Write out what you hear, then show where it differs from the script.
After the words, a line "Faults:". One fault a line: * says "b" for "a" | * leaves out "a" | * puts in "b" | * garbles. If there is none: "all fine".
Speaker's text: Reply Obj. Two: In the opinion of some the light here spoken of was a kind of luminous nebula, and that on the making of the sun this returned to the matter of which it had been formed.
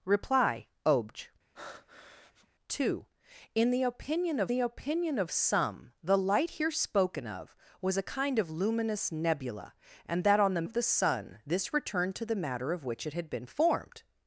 Reply Obj. Two: In the opinion of the opinion of some the light here spoken of was a kind of luminous nebula, and that on the of the sun this returned to the matter of which it had been formed.
Faults:
* puts in "the opinion of"
* leaves out "making"